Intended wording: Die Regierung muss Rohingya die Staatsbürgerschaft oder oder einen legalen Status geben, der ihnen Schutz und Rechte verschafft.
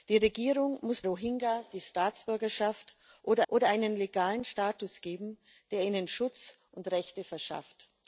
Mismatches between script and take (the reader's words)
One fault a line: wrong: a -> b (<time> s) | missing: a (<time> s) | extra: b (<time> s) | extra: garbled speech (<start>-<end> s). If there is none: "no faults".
no faults